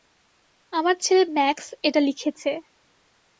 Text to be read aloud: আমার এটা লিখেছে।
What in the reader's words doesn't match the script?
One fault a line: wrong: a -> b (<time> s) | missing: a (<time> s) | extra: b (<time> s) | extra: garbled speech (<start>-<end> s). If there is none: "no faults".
extra: ছেলে ম্যাক্স (1.0 s)